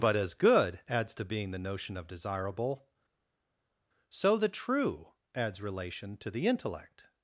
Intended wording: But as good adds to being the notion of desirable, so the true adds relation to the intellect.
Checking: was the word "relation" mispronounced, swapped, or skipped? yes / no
no